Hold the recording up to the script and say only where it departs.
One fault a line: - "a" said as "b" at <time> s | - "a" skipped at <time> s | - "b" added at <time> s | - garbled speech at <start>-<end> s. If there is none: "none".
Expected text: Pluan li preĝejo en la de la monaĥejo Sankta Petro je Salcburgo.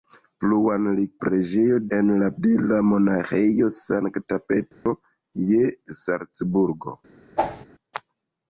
none